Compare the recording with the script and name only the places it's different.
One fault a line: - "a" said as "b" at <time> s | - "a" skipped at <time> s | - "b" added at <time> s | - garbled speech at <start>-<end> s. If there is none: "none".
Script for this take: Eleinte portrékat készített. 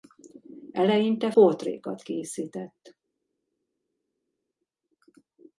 none